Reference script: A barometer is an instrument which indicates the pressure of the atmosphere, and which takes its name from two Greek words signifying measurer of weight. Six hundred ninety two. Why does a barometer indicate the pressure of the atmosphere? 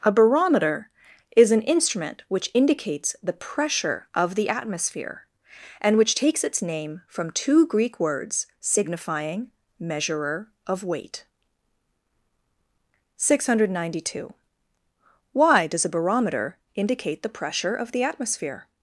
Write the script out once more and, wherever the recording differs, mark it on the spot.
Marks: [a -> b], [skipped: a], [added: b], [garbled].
A barometer is an instrument which indicates the pressure of the atmosphere, and which takes its name from two Greek words signifying measurer of weight. Six hundred ninety two. Why does a barometer indicate the pressure of the atmosphere?